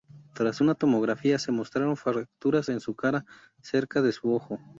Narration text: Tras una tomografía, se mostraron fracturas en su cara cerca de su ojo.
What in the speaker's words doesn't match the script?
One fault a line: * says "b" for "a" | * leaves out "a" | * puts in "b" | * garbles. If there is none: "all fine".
all fine